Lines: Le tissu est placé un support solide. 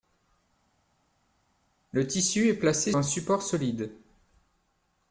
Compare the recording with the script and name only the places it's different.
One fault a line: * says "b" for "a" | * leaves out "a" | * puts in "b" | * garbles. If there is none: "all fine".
all fine